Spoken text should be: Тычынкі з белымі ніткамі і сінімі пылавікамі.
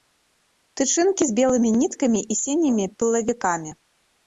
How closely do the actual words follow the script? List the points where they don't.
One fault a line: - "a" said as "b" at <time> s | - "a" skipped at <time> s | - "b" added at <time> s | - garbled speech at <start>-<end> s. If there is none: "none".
none